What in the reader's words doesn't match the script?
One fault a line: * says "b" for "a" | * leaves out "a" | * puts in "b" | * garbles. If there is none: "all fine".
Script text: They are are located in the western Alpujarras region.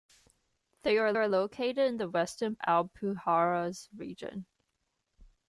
all fine